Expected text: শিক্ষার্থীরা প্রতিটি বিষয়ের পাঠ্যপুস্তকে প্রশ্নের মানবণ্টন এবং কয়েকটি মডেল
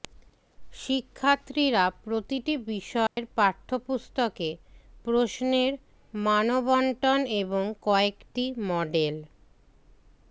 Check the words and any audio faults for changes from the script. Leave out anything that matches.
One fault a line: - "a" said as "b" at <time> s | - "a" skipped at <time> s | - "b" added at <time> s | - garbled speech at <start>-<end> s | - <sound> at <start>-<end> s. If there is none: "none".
- dropout at 3.1-3.2 s